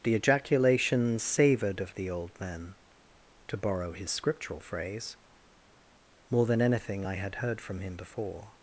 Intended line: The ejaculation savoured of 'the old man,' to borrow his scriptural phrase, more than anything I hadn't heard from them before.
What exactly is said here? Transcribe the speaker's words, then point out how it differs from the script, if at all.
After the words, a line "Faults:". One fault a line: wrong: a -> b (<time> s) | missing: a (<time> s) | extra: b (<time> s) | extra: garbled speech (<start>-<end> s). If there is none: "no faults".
The ejaculation savoured of 'the old man,' to borrow his scriptural phrase, more than anything I had heard from him before.
Faults:
wrong: hadn't -> had (7.1 s)
wrong: them -> him (7.8 s)